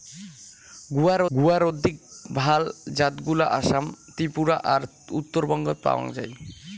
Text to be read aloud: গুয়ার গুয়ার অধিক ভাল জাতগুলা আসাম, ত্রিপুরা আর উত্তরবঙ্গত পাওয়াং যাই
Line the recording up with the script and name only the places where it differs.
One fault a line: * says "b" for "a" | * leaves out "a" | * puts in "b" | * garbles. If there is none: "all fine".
all fine